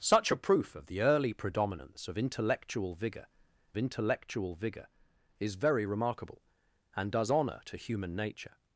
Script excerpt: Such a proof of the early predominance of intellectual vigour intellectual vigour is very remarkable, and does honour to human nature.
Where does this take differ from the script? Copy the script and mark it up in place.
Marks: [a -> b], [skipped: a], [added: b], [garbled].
Such a proof of the early predominance of intellectual vigour intellectual vigour is very remarkable, and does honour to human nature.